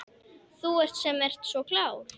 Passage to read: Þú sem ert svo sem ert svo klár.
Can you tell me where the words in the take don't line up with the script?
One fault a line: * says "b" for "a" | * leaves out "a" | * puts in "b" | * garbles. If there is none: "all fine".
* leaves out "sem ert svo"